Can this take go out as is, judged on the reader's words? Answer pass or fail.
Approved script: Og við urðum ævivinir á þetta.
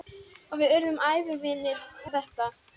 pass